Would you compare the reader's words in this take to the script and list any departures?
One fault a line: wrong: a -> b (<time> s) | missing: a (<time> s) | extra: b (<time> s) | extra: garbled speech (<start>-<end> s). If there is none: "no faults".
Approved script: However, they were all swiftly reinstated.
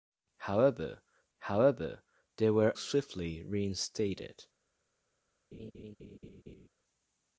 extra: however (1.4 s)
missing: all (2.7 s)